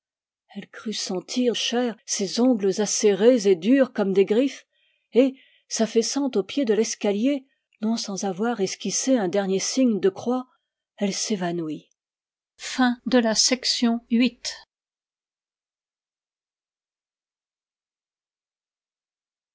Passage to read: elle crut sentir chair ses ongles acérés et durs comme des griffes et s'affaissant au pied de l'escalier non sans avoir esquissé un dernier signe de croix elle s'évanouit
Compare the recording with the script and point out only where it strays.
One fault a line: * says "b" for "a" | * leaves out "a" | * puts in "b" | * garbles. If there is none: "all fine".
all fine